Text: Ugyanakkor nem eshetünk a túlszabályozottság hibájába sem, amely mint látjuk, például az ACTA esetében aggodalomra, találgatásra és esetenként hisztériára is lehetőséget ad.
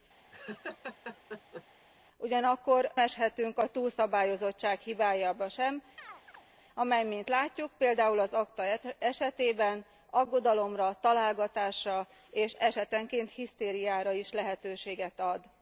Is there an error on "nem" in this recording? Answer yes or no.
yes